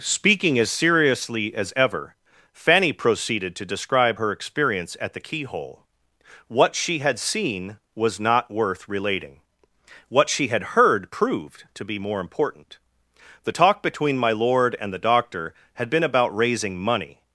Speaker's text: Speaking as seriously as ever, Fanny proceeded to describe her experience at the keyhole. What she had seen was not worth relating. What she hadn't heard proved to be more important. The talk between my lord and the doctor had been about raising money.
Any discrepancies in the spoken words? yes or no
yes